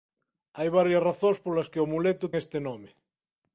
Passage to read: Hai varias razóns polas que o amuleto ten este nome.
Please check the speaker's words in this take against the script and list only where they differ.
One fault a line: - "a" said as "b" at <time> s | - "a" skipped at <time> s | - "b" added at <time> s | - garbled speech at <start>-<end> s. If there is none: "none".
- "ten" skipped at 2.2 s